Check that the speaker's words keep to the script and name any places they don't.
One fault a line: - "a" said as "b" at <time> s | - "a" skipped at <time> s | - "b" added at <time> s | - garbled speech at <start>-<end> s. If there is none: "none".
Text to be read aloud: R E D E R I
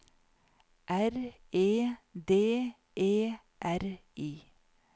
none